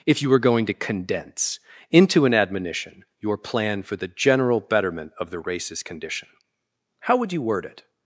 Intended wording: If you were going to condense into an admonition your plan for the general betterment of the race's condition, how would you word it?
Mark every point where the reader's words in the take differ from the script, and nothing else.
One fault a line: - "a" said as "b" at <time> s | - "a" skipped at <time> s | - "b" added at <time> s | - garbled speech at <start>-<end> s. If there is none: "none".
none